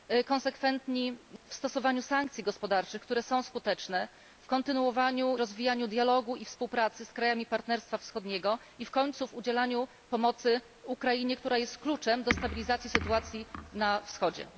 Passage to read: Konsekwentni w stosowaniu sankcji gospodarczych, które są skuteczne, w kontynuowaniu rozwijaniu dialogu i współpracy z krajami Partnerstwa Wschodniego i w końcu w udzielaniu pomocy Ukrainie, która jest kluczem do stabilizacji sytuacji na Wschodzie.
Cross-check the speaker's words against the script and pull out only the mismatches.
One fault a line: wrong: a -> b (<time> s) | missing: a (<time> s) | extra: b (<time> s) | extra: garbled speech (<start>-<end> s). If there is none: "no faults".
no faults